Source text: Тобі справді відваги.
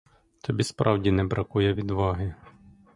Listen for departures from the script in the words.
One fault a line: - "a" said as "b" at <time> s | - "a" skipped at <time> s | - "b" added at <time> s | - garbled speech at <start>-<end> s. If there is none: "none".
- "не бракує" added at 1.1 s